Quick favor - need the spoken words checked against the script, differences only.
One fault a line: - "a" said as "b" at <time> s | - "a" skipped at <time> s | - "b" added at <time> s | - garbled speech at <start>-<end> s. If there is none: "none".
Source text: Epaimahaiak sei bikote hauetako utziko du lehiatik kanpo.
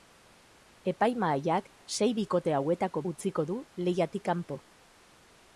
none